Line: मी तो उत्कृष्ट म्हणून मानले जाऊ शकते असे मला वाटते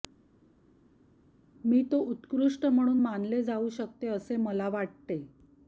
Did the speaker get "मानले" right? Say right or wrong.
right